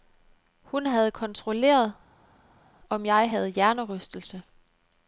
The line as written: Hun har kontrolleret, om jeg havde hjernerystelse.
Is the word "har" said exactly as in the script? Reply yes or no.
no